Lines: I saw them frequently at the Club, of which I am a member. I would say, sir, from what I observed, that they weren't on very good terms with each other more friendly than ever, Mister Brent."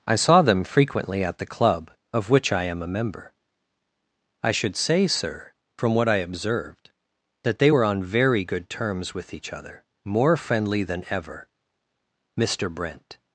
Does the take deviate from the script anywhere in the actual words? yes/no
yes